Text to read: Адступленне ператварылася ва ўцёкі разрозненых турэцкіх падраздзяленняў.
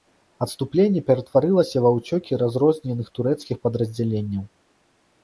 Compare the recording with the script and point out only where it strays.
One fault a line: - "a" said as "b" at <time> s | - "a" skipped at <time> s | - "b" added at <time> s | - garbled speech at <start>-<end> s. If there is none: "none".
none